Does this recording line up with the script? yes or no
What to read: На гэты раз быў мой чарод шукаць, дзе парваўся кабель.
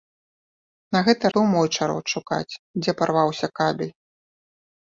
no